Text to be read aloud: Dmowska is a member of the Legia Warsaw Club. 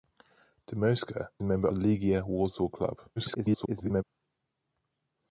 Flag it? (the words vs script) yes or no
yes